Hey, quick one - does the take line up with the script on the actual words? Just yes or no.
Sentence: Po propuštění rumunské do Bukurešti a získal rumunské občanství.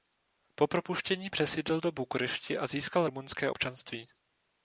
no